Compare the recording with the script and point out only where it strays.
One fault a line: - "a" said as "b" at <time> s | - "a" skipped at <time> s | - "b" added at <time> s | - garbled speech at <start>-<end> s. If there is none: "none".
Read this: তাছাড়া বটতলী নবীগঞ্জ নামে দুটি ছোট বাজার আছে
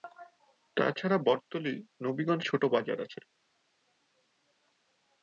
- "নামে দুটি" skipped at 2.4 s